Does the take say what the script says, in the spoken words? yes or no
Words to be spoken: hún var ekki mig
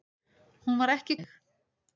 yes